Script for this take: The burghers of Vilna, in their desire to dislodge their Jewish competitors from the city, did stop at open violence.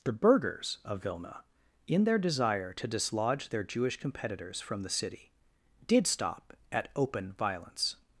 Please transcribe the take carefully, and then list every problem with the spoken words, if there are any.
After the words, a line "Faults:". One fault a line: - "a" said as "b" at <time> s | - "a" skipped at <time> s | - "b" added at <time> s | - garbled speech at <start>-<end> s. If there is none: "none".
The burghers of Vilna, in their desire to dislodge their Jewish competitors from the city, did stop at open violence.
Faults:
none